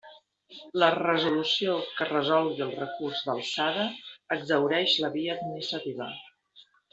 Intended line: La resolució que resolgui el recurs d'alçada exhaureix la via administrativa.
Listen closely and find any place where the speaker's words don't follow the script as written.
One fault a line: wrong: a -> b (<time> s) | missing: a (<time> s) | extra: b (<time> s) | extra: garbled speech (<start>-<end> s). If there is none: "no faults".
no faults